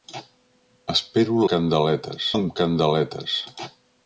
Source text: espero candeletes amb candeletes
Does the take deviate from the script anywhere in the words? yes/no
no